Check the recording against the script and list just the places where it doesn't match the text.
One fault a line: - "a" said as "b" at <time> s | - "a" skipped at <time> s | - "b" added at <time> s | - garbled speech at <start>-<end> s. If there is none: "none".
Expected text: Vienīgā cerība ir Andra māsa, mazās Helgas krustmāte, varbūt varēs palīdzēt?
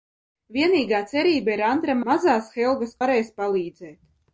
- "māsa" skipped at 2.0 s
- "krustmāte varbūt" skipped at 3.0 s